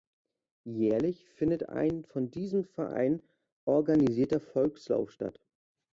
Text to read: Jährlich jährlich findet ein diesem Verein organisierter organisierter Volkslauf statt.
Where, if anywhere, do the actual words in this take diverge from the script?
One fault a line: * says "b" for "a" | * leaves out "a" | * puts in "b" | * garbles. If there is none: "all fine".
* leaves out "jährlich"
* puts in "von"
* leaves out "organisierter"